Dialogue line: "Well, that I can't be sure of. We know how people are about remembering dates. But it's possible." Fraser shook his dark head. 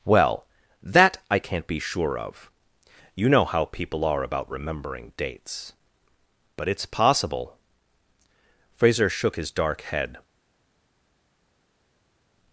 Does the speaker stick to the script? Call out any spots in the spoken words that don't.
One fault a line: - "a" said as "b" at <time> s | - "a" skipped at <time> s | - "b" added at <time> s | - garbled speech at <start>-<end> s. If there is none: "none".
- "We" said as "You" at 3.1 s